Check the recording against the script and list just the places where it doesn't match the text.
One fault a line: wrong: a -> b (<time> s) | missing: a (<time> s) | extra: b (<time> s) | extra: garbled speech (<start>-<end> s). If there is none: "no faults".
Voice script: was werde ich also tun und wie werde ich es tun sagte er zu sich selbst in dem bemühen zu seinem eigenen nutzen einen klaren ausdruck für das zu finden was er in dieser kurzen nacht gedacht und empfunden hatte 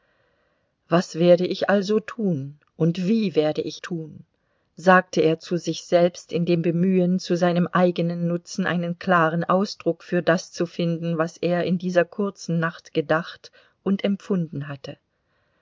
missing: es (3.8 s)